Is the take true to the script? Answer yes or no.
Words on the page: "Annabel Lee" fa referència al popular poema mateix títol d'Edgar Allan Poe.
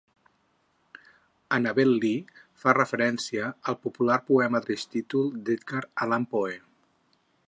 yes